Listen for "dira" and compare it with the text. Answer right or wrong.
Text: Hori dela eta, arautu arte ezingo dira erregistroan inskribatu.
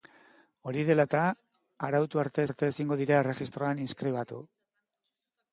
right